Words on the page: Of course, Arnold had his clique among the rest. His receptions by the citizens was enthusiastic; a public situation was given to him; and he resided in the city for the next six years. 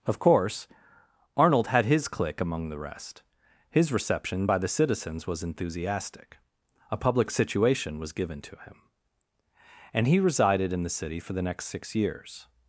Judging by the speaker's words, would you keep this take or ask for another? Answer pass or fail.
fail